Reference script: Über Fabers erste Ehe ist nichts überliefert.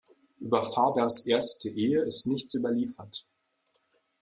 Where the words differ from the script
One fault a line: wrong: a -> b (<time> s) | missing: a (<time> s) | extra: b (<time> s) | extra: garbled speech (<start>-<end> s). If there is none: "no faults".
no faults